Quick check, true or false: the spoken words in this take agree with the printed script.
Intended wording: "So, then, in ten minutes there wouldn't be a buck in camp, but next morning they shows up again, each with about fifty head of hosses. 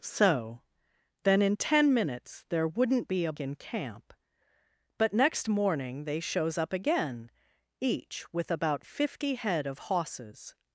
false